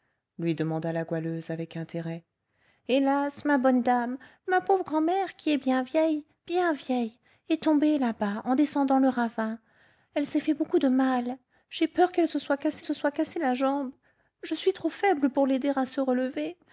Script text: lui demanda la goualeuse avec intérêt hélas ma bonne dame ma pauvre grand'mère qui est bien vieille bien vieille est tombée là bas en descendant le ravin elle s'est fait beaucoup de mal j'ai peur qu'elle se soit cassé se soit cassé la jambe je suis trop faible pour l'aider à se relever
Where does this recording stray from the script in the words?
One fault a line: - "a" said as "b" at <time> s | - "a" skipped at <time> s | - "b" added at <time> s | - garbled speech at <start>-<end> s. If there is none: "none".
none